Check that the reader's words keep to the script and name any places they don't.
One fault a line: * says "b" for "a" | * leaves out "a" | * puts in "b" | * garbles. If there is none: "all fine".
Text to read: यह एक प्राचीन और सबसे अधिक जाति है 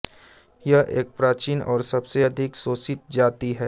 * puts in "शोषित"